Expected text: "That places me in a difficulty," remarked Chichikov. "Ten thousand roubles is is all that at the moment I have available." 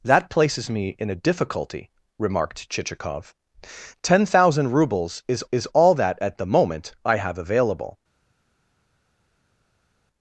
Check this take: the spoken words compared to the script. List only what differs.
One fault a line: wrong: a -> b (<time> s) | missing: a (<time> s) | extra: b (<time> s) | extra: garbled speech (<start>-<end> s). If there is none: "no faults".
no faults